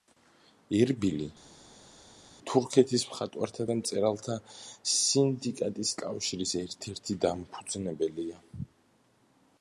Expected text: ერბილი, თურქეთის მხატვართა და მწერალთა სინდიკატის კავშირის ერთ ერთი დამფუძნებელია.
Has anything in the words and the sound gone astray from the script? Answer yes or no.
no